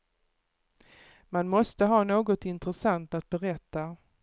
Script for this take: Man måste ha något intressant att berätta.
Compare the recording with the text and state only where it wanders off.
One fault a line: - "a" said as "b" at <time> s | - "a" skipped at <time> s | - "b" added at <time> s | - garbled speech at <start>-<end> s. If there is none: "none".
none